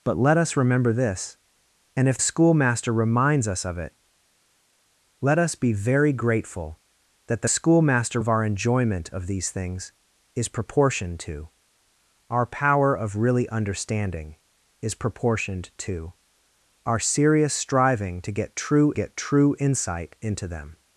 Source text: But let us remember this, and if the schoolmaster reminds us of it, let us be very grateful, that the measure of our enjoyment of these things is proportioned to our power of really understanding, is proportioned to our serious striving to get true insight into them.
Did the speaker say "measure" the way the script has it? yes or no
no